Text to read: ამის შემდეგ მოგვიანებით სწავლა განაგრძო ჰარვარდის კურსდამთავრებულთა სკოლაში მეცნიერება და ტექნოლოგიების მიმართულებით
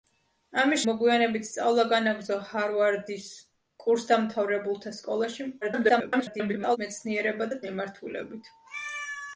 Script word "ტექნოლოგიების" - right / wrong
wrong